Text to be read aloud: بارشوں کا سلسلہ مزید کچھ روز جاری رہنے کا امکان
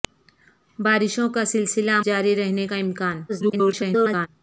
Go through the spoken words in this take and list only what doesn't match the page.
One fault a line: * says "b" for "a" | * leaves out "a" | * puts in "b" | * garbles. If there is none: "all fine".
* leaves out "مزید کچھ روز"
* garbles